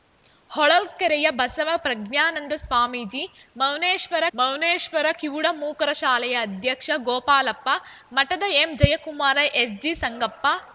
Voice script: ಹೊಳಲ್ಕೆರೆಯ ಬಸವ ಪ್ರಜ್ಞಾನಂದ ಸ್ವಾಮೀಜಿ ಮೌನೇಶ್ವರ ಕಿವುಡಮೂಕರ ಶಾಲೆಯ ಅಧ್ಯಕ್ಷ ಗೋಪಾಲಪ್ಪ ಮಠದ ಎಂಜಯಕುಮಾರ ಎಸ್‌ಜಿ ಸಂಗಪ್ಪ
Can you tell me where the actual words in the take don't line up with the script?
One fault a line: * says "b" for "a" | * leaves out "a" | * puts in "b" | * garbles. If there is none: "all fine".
* puts in "ಮೌನೇಶ್ವರ"